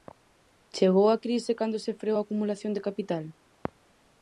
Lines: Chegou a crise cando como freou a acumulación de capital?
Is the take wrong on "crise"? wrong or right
right